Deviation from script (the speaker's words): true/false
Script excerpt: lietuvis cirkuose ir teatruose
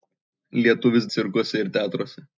false